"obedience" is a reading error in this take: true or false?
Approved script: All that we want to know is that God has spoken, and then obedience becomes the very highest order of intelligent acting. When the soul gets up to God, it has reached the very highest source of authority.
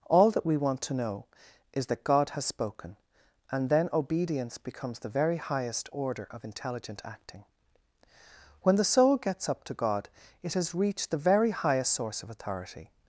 false